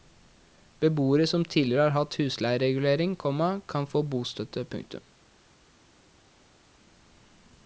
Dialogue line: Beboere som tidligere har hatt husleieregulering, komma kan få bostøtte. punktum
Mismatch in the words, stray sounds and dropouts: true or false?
false